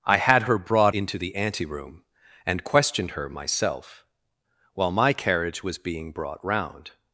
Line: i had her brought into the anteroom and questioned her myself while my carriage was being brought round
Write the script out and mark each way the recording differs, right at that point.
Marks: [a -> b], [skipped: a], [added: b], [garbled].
i had her brought into the anteroom and questioned her myself while my carriage was being brought round